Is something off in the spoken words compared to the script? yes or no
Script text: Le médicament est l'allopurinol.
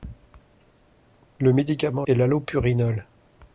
no